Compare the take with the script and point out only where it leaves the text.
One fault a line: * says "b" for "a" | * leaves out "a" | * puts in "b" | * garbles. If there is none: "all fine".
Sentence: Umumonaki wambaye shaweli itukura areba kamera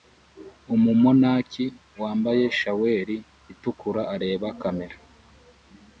all fine